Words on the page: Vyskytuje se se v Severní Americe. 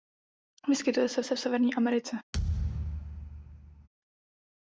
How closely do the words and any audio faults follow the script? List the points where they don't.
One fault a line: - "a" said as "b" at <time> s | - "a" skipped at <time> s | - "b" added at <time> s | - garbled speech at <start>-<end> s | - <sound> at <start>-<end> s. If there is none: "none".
- thud at 2.3-3.9 s